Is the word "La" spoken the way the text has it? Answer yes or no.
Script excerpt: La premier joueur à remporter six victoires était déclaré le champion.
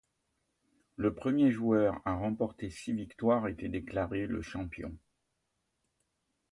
no